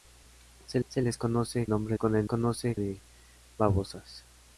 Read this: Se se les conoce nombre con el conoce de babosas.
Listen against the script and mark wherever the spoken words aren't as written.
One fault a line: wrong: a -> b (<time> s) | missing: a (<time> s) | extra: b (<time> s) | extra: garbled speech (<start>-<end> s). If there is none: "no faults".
no faults